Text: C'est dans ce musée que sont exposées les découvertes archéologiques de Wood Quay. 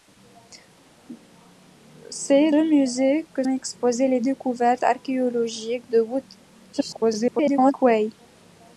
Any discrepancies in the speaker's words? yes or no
yes